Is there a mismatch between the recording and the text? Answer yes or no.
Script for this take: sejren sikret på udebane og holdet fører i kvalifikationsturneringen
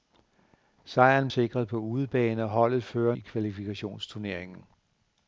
no